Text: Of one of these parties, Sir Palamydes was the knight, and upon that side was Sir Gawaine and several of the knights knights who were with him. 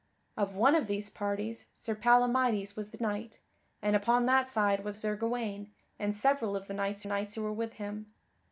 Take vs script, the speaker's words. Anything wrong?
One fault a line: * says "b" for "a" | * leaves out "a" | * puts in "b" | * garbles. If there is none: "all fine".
all fine